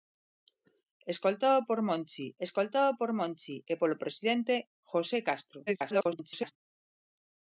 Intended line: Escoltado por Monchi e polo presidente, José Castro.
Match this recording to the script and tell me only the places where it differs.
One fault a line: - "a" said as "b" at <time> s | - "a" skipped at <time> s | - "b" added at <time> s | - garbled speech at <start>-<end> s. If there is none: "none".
- "escoltado por Monchi" added at 2.5 s
- garbled speech at 5.7-6.5 s